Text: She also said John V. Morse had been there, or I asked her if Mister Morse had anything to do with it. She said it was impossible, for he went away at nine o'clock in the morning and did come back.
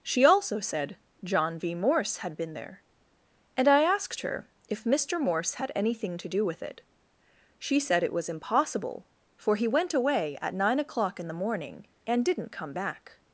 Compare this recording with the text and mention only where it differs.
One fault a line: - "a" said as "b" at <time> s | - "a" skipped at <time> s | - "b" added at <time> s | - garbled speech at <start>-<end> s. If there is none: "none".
- "or" said as "and" at 3.5 s
- "did" said as "didn't" at 12.2 s